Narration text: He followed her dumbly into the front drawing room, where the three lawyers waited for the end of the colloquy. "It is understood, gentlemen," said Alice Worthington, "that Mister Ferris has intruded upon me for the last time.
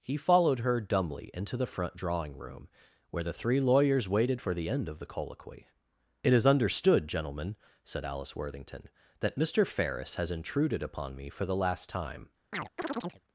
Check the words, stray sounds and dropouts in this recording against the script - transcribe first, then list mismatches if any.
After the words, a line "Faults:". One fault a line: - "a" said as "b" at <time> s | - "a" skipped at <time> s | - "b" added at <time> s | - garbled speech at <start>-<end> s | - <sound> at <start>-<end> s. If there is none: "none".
He followed her dumbly into the front drawing room, where the three lawyers waited for the end of the colloquy. "It is understood, gentlemen," said Alice Worthington, "that Mister Ferris has intruded upon me for the last time.
Faults:
- chirp at 12.5-13.2 s